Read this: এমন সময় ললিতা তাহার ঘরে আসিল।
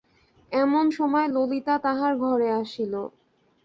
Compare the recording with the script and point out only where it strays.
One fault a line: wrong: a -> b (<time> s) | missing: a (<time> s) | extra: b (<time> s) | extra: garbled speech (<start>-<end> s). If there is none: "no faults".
no faults